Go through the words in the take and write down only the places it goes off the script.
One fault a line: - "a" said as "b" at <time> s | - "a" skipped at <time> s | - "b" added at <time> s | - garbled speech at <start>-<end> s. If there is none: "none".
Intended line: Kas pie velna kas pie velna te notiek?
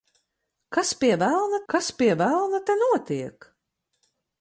none